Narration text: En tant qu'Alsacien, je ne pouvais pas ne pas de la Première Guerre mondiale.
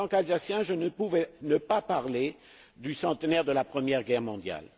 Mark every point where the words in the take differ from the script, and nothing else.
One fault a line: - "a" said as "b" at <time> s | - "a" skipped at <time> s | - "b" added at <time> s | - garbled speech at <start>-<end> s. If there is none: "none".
- "parler du centenaire" added at 1.8 s